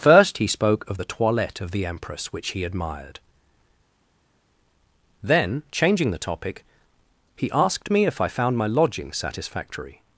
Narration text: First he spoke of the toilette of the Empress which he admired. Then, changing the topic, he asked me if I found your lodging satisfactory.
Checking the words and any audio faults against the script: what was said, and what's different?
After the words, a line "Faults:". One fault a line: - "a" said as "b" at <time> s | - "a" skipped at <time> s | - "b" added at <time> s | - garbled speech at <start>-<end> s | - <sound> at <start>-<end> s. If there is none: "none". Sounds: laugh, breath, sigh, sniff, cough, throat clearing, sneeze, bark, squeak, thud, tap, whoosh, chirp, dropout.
First he spoke of the toilette of the Empress which he admired. Then, changing the topic, he asked me if I found my lodging satisfactory.
Faults:
- "your" said as "my" at 8.5 s